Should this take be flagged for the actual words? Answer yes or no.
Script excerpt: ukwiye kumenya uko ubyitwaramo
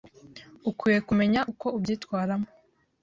no